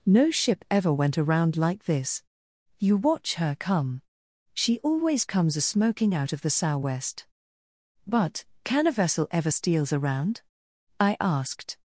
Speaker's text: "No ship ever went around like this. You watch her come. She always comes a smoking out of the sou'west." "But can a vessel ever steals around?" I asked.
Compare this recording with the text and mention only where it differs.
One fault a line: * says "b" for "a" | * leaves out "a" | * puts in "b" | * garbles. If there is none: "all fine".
all fine